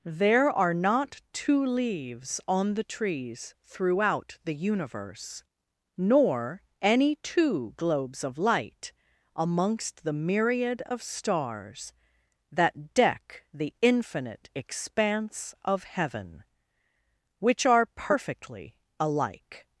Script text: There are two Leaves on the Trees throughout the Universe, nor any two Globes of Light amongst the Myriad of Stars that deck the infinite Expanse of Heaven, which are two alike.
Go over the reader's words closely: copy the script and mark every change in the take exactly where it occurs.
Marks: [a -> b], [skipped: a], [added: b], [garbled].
There are [added: not] two Leaves on the Trees throughout the Universe, nor any two Globes of Light amongst the Myriad of Stars that deck the infinite Expanse of Heaven, which are [two -> perfectly] alike.